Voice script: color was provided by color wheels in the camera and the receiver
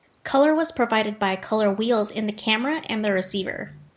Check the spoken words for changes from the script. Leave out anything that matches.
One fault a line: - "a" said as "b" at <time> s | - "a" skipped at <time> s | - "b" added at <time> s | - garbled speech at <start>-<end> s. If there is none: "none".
none